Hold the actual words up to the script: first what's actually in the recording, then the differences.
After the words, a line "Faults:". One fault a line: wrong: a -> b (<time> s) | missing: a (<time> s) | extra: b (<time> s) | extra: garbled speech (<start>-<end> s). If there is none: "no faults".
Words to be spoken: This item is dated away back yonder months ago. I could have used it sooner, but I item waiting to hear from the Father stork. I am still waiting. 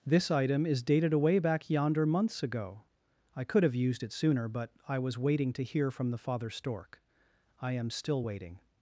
This item is dated away back yonder months ago. I could have used it sooner, but I was waiting to hear from the Father stork. I am still waiting.
Faults:
wrong: item -> was (5.0 s)